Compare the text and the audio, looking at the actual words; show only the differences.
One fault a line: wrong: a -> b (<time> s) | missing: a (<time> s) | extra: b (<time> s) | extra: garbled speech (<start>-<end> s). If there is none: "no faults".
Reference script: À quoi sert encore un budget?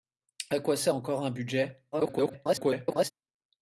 extra: garbled speech (1.9-3.1 s)